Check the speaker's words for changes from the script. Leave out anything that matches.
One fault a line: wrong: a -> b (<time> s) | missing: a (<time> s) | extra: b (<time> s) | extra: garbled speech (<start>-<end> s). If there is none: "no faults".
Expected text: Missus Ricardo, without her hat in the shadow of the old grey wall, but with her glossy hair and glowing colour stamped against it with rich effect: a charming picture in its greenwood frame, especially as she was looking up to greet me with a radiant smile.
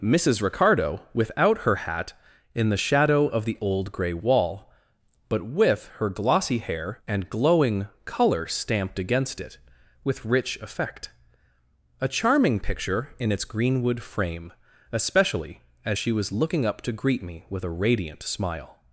no faults